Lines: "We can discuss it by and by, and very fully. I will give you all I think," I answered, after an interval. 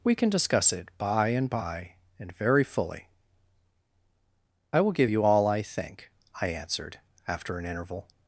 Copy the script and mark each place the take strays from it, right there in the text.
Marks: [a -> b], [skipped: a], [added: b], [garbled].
"We can discuss it by and by, and very fully. I will give you all I think," I answered, after an interval.